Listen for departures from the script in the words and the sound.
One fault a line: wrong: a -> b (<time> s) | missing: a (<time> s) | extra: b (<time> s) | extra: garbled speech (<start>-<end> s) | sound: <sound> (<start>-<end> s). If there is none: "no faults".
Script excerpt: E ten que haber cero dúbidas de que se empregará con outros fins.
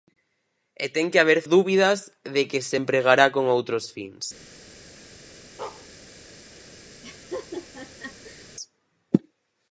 missing: cero (1.4 s)
sound: bark (5.6-5.9 s)
sound: laugh (7.0-8.5 s)